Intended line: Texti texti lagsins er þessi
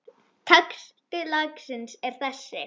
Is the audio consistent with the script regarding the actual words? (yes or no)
no